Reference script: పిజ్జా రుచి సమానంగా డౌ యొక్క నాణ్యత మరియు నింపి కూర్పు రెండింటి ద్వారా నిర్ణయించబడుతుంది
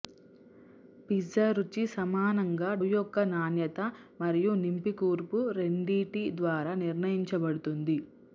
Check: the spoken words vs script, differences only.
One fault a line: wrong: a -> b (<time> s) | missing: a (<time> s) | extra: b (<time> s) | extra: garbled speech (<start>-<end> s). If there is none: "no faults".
missing: డౌ (2.7 s)